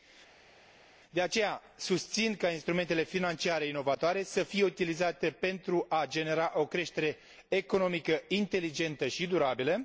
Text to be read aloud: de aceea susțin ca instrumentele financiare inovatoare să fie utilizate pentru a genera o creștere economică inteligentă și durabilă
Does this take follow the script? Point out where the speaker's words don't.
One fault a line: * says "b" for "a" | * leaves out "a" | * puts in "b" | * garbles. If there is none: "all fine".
all fine